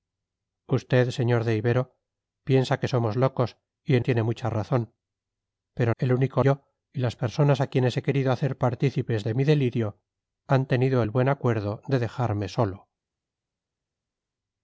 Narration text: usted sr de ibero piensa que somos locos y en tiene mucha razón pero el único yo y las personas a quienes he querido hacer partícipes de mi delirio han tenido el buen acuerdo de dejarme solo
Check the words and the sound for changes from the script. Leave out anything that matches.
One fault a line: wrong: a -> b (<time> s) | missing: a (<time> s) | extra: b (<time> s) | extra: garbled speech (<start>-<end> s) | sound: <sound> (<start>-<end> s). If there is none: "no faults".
no faults